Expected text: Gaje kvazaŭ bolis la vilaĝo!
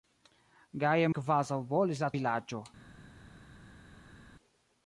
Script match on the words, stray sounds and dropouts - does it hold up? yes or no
yes